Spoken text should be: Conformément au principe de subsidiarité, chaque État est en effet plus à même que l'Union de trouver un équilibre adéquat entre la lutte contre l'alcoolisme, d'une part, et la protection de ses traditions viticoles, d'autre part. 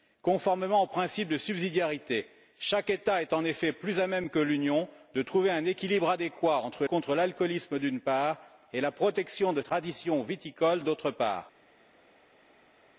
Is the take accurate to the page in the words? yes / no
no